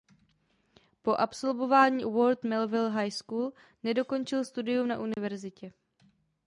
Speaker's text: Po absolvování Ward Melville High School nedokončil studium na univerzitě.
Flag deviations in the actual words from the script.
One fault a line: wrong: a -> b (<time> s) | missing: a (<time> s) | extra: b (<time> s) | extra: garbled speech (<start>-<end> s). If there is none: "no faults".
no faults